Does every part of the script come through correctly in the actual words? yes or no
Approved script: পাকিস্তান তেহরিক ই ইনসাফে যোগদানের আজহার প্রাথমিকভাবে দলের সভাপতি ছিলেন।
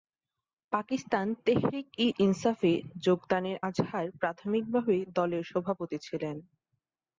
yes